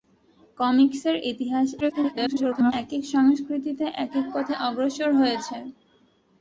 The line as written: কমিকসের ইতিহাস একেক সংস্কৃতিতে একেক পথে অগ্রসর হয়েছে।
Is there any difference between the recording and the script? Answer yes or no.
yes